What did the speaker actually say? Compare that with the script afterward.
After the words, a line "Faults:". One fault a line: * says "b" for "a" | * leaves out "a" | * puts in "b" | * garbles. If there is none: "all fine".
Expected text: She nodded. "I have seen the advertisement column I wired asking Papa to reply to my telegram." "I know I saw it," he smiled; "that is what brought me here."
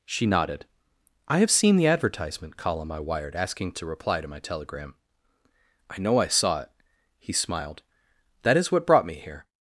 She nodded. "I have seen the advertisement column I wired asking To reply to my telegram." "I know I saw it," he smiled; "that is what brought me here."
Faults:
* leaves out "Papa"